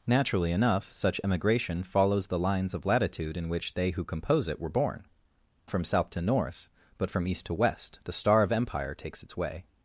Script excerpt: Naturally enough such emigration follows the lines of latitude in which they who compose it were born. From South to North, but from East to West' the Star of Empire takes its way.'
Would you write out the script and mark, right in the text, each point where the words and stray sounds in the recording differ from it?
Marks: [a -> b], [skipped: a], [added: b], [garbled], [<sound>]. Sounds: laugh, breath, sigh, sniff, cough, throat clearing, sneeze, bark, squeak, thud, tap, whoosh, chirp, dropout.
Naturally enough such emigration follows the lines of latitude in which they who compose it were born. From South to North, but from East to West' the Star of Empire takes its way.'